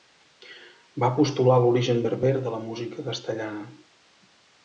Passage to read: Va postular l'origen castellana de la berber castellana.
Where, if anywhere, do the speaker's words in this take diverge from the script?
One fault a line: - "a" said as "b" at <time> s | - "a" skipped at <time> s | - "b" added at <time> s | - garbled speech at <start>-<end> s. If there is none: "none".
- "castellana" said as "berber" at 2.1 s
- "berber" said as "música" at 2.7 s